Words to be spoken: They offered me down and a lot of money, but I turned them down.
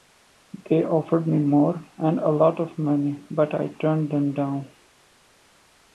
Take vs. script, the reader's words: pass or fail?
fail